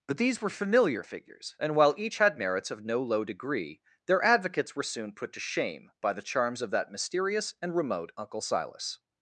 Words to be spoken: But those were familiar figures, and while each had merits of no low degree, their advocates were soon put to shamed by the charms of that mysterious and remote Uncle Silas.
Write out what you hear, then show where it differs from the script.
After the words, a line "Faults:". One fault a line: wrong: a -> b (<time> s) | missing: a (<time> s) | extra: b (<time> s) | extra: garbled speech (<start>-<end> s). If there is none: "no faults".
But these were familiar figures, and while each had merits of no low degree, their advocates were soon put to shame by the charms of that mysterious and remote Uncle Silas.
Faults:
wrong: those -> these (0.2 s)
wrong: shamed -> shame (5.4 s)